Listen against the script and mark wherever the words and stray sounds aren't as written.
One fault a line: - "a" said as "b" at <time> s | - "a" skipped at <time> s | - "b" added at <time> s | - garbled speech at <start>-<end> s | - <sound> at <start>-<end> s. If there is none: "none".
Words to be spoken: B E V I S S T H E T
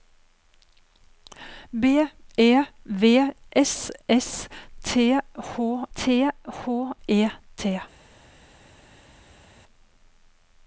- "I" said as "S" at 3.5 s
- "S" said as "T H" at 4.8 s